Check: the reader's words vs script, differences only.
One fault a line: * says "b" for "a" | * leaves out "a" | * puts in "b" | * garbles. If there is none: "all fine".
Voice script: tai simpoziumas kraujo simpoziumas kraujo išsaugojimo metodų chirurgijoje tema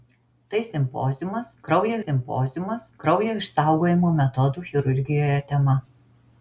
all fine